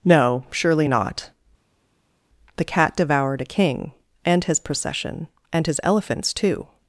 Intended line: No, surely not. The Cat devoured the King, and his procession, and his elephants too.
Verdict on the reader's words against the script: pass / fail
fail